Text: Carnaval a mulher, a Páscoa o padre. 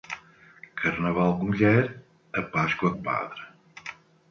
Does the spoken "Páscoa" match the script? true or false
true